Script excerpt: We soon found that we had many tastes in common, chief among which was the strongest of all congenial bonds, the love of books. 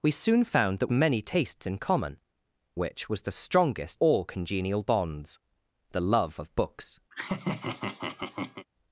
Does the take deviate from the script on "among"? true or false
true